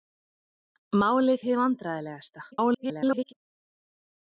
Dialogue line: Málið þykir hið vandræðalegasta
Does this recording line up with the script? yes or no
no